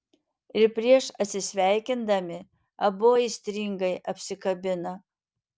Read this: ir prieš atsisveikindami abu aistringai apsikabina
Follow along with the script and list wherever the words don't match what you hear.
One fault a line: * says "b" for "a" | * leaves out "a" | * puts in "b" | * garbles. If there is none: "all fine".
all fine